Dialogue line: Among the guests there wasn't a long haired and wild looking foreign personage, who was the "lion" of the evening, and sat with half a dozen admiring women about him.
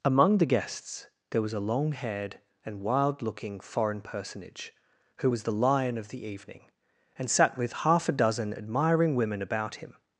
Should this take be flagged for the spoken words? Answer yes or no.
yes